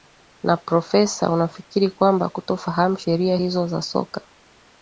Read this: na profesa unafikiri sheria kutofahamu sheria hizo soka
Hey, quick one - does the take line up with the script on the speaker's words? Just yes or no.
no